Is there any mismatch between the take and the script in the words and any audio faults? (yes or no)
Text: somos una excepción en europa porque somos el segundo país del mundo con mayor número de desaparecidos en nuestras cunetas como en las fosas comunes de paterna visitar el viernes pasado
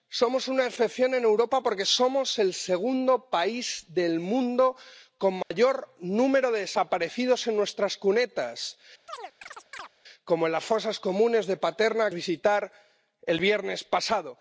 yes